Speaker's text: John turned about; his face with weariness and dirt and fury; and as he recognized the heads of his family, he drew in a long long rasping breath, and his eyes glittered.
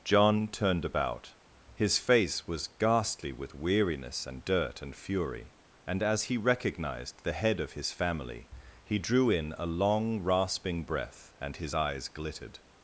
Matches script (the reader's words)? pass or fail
fail